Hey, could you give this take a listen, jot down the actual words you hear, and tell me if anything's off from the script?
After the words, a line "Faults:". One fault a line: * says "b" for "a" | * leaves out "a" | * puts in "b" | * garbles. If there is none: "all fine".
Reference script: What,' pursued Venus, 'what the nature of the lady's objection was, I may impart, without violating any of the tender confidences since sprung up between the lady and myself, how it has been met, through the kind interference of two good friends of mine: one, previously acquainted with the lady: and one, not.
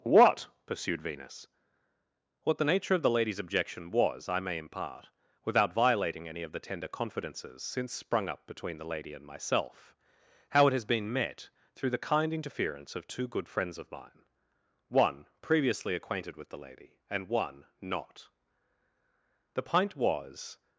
What,' pursued Venus, 'what the nature of the lady's objection was, I may impart, without violating any of the tender confidences since sprung up between the lady and myself, how it has been met, through the kind interference of two good friends of mine: one, previously acquainted with the lady: and one, not. The pint was
Faults:
* puts in "The pint was"